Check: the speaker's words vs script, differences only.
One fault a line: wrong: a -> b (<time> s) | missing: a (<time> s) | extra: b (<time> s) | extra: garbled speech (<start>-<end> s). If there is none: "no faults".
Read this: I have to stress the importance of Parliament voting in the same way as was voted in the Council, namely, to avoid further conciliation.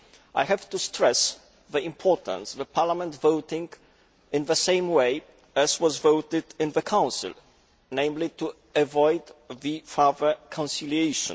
no faults